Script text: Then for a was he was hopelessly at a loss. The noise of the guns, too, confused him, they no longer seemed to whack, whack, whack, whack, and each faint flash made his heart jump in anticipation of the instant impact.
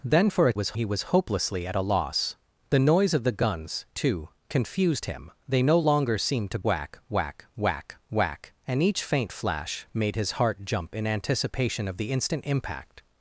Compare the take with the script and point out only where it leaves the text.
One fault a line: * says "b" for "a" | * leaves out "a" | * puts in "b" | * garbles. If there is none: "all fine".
all fine